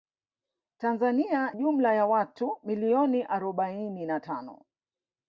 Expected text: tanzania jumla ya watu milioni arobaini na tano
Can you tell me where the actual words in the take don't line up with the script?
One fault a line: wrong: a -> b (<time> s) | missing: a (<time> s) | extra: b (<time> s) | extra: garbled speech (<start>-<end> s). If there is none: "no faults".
no faults